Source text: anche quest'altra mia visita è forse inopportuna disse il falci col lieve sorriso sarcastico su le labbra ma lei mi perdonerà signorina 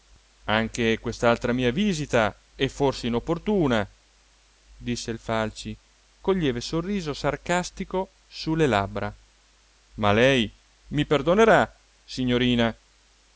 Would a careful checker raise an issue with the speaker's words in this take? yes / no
no